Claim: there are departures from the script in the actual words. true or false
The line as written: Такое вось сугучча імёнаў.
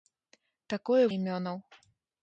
true